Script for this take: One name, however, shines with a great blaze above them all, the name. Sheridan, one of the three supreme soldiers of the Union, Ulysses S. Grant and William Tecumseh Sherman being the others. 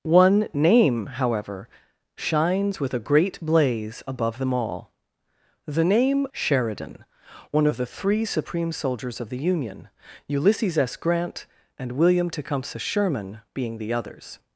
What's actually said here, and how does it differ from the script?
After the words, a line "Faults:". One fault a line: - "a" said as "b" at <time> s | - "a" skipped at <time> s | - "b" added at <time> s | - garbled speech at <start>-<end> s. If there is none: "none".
One name, however, shines with a great blaze above them all, the name. Sheridan, one of the three supreme soldiers of the Union, Ulysses S. Grant and William Tecumseh Sherman being the others.
Faults:
none